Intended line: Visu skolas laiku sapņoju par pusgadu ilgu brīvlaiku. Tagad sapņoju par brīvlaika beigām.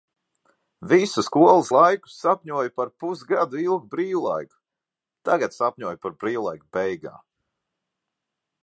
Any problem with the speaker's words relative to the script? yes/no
no